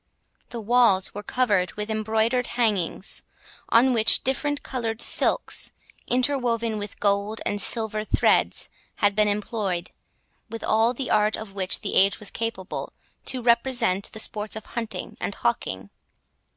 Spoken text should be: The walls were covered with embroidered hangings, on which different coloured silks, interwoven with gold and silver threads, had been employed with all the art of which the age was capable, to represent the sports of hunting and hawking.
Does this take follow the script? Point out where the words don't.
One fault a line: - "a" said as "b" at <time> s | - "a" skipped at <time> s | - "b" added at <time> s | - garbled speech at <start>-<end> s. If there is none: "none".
none